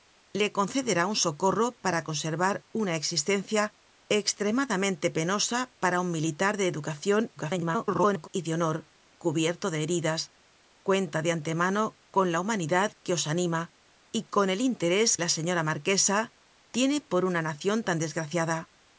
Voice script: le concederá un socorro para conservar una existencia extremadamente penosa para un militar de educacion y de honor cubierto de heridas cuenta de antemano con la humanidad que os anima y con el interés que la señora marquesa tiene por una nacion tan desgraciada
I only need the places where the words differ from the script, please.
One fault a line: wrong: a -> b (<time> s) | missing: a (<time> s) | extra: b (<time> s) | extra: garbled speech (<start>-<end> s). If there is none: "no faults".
extra: garbled speech (7.4-8.3 s)
missing: que (15.2 s)